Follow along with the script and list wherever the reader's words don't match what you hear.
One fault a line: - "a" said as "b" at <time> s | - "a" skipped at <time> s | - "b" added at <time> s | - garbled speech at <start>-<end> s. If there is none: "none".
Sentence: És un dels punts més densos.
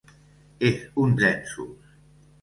- "dels punts més" skipped at 1.1 s